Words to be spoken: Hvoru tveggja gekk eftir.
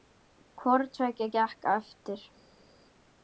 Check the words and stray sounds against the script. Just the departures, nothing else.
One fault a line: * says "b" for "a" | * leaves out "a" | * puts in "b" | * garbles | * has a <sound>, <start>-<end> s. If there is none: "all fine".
all fine